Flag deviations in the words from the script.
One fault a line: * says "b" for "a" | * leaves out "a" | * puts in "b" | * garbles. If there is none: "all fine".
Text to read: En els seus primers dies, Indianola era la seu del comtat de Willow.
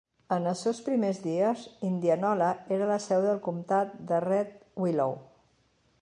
* puts in "Red"